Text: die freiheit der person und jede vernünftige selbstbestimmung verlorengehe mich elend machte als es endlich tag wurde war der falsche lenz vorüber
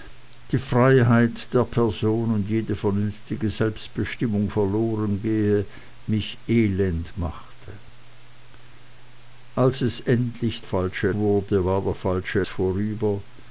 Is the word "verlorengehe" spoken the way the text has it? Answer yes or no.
yes